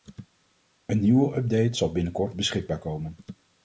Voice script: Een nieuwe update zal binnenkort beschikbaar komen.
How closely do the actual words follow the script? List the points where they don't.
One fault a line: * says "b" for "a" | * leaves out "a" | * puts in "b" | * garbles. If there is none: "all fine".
all fine